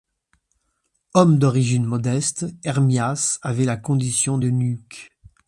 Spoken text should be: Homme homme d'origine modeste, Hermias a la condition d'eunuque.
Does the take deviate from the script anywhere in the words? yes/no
yes